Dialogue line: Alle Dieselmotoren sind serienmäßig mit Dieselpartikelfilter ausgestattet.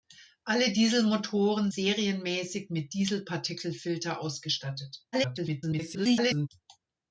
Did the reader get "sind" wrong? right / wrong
wrong